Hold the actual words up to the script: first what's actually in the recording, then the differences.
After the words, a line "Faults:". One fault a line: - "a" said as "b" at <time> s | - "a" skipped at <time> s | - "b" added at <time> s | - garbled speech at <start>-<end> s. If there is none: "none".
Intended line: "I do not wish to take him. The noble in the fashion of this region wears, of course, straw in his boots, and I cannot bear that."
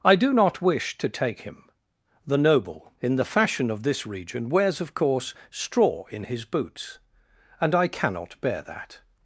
"I do not wish to take him. The noble in the fashion of this region wears, of course, straw in his boots, and I cannot bear that."
Faults:
none